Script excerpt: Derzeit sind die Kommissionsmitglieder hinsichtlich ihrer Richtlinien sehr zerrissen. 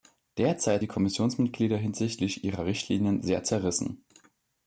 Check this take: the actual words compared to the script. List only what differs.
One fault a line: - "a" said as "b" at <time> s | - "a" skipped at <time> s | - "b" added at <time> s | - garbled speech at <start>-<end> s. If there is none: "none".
- "sind" skipped at 0.8 s